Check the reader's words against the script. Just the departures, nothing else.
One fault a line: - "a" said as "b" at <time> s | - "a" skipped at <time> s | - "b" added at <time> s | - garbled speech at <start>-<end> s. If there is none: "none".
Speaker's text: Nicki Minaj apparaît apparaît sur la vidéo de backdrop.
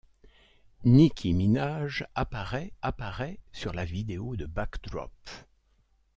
none